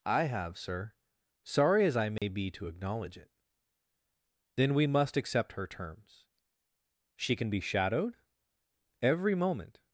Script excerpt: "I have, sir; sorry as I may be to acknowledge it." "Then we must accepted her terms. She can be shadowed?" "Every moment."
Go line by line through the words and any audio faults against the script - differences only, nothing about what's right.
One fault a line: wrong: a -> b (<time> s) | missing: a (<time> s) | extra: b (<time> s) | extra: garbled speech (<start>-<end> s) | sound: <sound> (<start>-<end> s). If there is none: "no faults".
sound: dropout (2.2-2.2 s)
wrong: accepted -> accept (5.2 s)